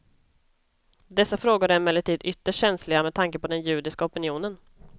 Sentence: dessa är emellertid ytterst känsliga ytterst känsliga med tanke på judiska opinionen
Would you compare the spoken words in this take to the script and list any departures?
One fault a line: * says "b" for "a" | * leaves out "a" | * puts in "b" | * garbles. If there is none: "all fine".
* puts in "frågor"
* leaves out "ytterst känsliga"
* puts in "den"